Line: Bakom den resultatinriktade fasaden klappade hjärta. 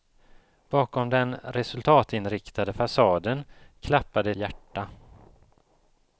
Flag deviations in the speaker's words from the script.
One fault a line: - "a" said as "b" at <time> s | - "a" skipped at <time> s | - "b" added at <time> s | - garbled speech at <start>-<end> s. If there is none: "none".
none